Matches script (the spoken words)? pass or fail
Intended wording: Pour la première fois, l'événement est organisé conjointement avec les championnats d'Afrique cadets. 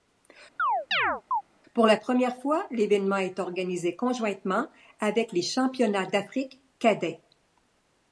pass